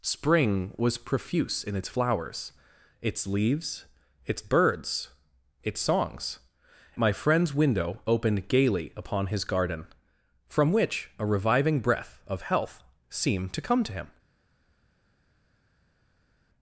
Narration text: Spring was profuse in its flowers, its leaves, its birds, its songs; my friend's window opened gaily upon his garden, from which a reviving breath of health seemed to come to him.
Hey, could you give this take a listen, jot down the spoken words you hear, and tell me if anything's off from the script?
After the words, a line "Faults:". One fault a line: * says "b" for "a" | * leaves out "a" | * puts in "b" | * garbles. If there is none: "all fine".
Spring was profuse in its flowers, its leaves, its birds, its songs; my friend's window opened gaily upon his garden, from which a reviving breath of health seemed to come to him.
Faults:
all fine